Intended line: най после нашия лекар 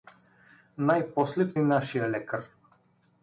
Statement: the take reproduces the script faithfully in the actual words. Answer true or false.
true